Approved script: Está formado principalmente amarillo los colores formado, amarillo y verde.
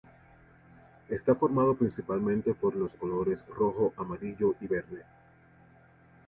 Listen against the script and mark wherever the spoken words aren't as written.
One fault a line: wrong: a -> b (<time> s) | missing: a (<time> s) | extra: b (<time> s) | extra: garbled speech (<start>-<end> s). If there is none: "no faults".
wrong: amarillo -> por (2.5 s)
wrong: formado -> rojo (3.5 s)